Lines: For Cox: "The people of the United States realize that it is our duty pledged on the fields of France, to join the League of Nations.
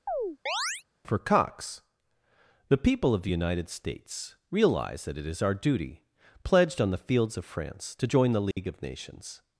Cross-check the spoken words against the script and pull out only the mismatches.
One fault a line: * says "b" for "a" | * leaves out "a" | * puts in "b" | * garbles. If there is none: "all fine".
all fine